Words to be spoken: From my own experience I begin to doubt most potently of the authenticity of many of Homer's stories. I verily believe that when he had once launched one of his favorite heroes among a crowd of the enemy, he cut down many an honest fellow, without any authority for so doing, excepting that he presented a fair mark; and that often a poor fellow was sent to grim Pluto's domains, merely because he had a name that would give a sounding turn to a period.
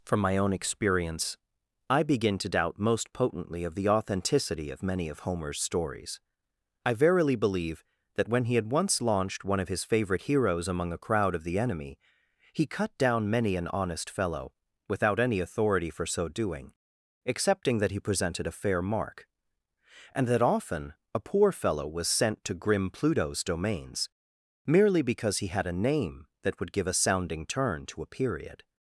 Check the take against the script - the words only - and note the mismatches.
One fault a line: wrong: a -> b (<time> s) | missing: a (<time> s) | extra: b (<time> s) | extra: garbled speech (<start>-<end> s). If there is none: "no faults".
no faults